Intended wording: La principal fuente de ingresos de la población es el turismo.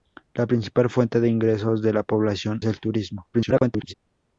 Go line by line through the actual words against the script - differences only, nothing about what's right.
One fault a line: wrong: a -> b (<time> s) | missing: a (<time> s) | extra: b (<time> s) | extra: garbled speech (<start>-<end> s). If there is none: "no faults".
missing: es (2.6 s)
extra: garbled speech (3.3-3.9 s)